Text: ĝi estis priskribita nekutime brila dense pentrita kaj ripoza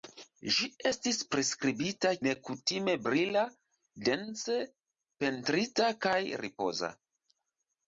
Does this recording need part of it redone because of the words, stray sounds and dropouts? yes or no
no